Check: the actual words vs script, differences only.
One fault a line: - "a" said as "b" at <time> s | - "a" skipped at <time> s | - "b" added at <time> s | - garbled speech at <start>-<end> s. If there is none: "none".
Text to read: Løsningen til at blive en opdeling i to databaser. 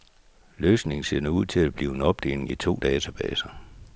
- "ser nu ud" added at 1.0 s